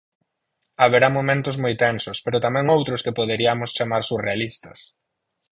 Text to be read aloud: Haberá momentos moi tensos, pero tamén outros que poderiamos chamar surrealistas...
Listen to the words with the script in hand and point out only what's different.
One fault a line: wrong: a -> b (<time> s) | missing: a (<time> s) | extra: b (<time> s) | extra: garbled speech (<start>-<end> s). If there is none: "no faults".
no faults